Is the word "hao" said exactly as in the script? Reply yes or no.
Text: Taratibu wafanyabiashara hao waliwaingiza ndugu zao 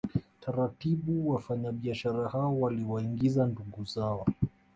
yes